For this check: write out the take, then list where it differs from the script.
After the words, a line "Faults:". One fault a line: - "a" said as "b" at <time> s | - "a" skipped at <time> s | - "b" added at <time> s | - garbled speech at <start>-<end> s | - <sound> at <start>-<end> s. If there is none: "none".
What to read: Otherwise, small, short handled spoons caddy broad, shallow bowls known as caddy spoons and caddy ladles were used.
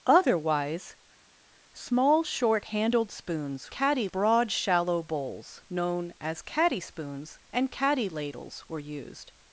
Otherwise, small, short handled spoons caddy broad, shallow bowls known as caddy spoons and caddy ladles were used.
Faults:
none